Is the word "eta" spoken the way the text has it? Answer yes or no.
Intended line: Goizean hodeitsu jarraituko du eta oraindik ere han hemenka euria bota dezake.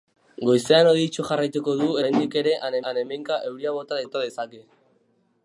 no